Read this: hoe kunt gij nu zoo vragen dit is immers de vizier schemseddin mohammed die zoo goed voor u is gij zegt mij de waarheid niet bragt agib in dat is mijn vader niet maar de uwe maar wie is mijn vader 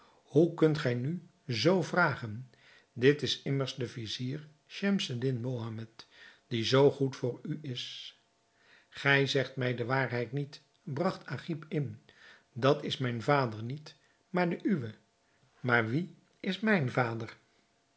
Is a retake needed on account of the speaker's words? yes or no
no